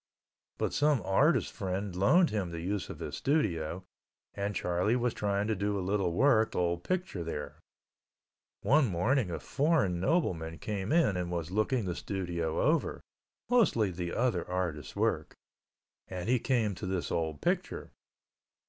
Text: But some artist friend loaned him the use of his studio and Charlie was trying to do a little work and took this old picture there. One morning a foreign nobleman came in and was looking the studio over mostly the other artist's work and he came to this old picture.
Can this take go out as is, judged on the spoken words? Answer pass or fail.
fail